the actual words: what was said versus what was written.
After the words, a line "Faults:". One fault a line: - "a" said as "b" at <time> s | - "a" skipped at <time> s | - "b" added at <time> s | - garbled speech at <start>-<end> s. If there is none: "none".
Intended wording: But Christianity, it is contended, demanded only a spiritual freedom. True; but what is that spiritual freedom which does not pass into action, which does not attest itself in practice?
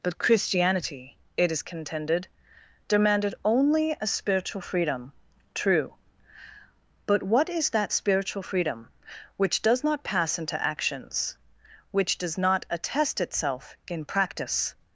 But Christianity, it is contended, demanded only a spiritual freedom. True; but what is that spiritual freedom which does not pass into actions, which does not attest itself in practice?
Faults:
- "action" said as "actions" at 10.6 s